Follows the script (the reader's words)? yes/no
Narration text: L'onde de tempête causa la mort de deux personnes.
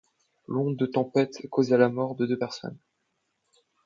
yes